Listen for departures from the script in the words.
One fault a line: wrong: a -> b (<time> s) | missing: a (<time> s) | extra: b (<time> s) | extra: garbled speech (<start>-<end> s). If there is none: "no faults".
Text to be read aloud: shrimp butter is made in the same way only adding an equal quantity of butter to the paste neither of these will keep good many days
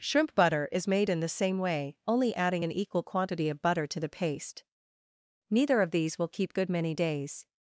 no faults